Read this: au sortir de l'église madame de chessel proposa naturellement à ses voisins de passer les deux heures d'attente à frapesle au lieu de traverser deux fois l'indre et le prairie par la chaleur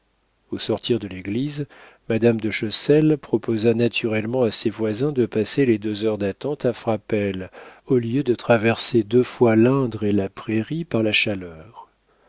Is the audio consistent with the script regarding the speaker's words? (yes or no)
no